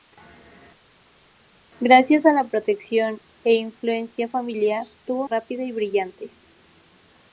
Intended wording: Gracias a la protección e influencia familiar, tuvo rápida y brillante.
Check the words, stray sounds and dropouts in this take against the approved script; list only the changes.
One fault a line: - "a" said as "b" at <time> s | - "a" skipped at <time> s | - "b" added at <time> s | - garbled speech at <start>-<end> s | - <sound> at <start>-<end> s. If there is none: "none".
none